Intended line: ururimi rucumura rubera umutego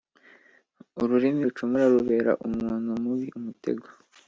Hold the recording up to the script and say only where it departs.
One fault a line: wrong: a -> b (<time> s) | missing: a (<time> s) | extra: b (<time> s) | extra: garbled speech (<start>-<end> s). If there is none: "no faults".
extra: umuntu mubi (2.5 s)